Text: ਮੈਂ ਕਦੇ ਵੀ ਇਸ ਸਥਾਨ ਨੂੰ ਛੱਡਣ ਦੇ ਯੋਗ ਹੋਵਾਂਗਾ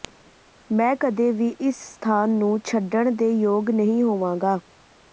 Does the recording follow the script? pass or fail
fail